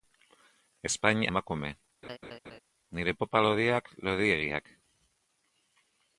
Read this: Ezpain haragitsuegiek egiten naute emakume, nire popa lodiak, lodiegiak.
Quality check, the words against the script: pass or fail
fail